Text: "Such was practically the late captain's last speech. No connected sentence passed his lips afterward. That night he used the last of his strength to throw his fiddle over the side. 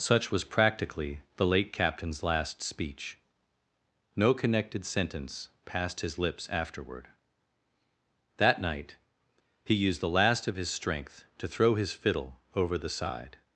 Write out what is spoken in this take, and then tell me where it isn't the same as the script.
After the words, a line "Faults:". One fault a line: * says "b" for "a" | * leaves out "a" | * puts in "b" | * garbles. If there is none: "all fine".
"Such was practically the late captain's last speech. No connected sentence passed his lips afterward. That night he used the last of his strength to throw his fiddle over the side.
Faults:
all fine